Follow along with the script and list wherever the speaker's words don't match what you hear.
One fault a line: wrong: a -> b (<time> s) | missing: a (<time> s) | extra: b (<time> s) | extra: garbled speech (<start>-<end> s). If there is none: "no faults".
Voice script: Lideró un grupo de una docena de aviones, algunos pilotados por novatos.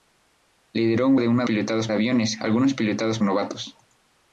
missing: grupo (1.1 s)
wrong: docena -> pilotados (1.4 s)
missing: por (3.2 s)